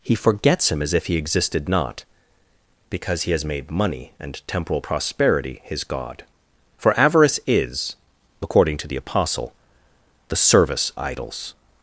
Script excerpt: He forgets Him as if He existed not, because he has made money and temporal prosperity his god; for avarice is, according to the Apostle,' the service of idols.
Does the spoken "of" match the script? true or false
false